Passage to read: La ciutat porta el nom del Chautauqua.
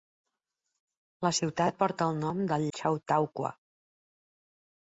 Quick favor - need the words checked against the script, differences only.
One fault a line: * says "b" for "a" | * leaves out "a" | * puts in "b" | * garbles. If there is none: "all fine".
all fine